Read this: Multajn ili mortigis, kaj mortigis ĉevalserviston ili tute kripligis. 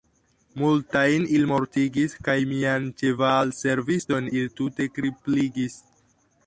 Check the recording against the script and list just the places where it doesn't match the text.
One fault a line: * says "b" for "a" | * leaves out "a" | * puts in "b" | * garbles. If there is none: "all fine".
* says "mian" for "mortigis"